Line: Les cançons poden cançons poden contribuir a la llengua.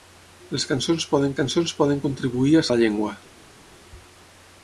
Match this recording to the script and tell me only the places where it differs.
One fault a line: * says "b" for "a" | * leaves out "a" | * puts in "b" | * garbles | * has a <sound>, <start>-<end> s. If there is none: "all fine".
all fine